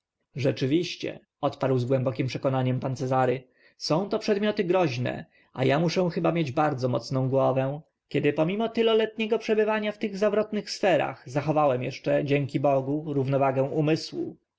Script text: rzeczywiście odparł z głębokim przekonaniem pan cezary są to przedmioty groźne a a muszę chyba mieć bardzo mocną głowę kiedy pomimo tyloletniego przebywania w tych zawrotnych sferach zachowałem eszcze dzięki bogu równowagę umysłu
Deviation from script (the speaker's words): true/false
false